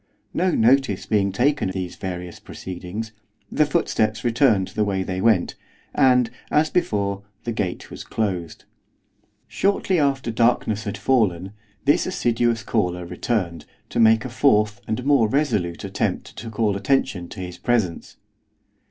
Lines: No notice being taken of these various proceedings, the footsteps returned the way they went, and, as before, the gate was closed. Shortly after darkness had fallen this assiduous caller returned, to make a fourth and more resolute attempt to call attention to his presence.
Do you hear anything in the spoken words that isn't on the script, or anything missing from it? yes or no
yes